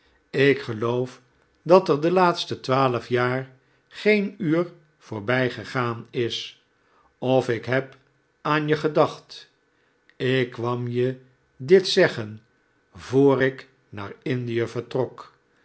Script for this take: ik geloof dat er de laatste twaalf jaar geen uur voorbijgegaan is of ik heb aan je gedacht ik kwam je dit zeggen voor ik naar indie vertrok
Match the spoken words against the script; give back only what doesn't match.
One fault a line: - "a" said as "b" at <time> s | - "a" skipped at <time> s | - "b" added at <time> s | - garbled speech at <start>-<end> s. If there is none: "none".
none